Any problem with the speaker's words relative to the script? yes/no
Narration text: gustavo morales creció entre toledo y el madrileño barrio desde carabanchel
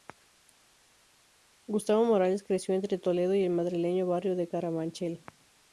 yes